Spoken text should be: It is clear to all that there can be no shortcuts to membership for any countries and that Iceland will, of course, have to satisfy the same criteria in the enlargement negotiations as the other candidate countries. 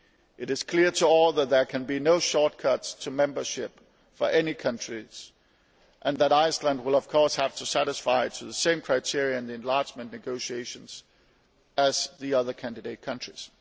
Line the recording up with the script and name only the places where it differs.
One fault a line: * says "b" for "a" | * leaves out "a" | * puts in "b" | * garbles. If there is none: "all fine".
all fine